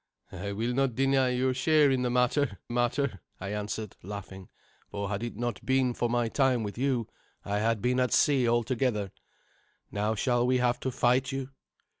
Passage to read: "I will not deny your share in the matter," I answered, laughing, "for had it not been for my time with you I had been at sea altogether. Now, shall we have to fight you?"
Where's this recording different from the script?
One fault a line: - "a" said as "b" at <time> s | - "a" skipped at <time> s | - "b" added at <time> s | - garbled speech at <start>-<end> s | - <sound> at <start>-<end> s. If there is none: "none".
- "matter" added at 2.7 s